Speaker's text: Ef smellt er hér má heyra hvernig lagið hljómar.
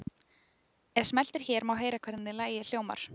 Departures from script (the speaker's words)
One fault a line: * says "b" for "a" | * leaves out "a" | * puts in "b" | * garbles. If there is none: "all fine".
all fine